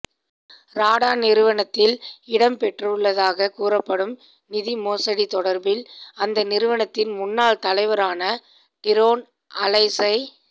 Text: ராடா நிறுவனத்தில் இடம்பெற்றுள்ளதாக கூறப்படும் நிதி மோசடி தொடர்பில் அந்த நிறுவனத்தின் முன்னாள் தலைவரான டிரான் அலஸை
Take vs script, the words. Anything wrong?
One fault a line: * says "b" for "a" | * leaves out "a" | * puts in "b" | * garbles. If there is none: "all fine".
all fine